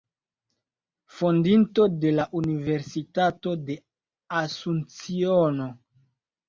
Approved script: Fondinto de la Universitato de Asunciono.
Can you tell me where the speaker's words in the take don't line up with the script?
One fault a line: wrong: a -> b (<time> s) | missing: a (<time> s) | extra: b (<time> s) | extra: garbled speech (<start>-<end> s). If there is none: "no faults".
no faults